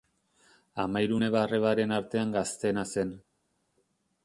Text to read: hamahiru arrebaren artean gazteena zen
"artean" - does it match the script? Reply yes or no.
yes